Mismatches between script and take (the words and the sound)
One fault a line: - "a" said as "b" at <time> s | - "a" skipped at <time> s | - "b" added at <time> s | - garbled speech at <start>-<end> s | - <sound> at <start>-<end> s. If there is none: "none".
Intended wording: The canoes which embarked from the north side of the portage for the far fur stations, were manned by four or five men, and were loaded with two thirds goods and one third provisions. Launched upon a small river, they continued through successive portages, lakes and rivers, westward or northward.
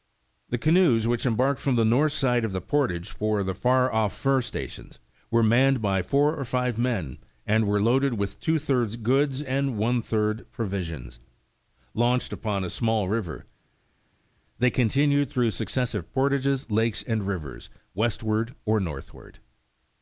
- "off" added at 3.9 s